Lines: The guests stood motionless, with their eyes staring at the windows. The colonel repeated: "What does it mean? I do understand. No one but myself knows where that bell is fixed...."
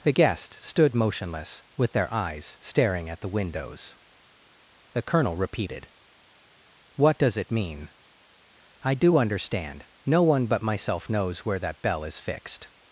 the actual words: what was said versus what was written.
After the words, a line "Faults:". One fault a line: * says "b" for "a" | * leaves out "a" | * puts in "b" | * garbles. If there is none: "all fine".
The guests stood motionless, with their eyes staring at the windows. The colonel repeated: "What does it mean? I do understand. No one but myself knows where that bell is fixed...."
Faults:
all fine